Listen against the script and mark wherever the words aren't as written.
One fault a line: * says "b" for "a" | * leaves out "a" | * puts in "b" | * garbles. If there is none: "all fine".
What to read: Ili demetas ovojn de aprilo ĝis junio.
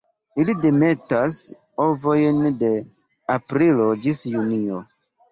all fine